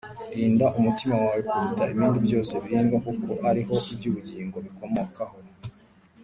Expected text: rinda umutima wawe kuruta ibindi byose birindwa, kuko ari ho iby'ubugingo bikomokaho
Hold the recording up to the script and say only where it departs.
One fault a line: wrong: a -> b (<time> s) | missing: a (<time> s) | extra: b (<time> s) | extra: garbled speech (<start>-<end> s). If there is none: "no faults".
no faults